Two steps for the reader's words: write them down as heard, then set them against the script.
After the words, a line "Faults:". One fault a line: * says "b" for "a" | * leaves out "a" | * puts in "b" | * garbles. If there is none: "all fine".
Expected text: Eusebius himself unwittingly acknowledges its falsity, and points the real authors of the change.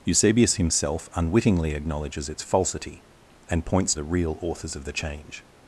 Eusebius himself unwittingly acknowledges its falsity, and points the real authors of the change.
Faults:
all fine